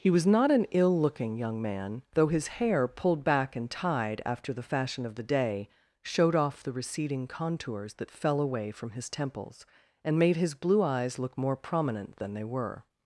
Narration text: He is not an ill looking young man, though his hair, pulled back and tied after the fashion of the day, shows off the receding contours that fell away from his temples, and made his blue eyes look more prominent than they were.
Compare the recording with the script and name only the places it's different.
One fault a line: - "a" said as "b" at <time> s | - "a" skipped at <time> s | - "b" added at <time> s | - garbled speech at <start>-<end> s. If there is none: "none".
- "is" said as "was" at 0.1 s
- "shows" said as "showed" at 6.0 s